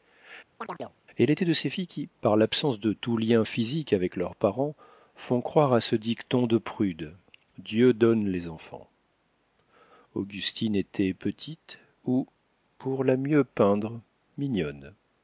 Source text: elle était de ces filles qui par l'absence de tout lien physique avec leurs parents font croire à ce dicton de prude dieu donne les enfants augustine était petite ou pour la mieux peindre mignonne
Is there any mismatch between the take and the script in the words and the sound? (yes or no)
yes